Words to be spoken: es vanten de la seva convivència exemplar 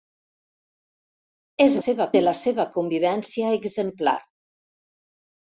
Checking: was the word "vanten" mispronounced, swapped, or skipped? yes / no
yes